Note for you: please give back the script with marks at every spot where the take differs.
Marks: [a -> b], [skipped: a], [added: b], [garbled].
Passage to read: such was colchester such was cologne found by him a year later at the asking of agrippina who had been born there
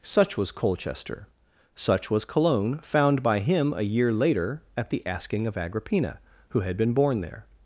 such was colchester such was cologne found by him a year later at the asking of agrippina who had been born there